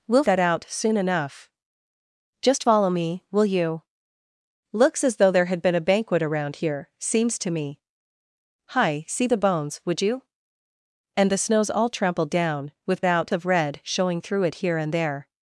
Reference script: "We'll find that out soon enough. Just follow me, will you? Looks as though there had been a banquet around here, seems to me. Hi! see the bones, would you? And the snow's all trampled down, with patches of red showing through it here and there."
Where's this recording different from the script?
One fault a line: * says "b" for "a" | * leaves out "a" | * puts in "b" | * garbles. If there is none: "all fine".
* leaves out "find"
* says "out" for "patches"